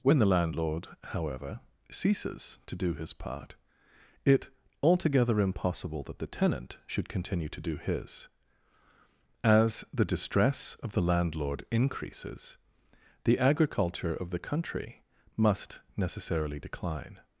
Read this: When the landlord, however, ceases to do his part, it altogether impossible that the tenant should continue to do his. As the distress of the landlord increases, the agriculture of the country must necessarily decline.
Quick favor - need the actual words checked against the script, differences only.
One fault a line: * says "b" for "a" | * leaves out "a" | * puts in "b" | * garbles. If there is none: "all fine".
all fine